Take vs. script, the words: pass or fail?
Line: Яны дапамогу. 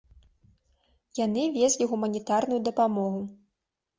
fail